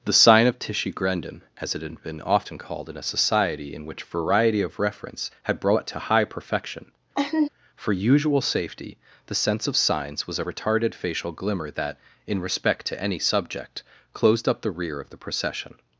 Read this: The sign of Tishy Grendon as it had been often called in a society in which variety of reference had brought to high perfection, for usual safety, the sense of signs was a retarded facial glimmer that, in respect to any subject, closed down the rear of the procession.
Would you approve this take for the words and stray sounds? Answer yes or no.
no